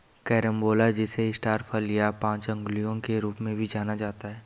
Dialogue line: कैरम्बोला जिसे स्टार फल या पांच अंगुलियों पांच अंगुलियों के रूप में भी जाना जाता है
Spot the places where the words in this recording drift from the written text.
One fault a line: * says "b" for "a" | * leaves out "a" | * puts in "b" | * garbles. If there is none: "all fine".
* leaves out "पांच अंगुलियों"